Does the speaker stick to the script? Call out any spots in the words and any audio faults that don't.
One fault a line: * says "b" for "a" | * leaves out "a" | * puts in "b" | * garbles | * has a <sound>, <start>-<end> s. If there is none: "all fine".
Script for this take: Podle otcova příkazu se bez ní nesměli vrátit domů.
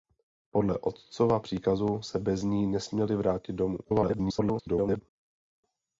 * garbles